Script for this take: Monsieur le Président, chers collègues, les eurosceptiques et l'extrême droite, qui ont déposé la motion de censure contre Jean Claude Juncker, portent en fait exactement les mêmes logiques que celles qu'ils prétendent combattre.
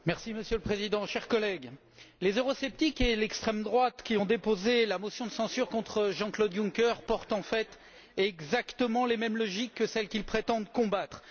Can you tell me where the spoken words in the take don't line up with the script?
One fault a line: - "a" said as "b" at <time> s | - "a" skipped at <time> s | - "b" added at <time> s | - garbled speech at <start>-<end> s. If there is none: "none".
none